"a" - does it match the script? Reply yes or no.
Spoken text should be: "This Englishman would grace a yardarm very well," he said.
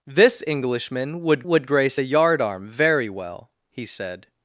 yes